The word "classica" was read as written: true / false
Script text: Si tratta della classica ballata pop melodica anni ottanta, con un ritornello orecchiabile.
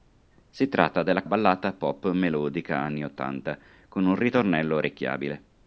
false